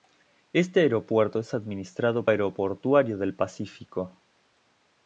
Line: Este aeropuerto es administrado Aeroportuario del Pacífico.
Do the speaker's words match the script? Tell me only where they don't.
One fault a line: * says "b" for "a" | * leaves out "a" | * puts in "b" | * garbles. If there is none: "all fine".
all fine